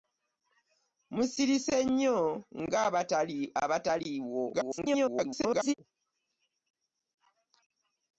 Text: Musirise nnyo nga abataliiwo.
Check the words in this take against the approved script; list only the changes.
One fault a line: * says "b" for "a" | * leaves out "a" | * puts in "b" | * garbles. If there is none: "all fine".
* garbles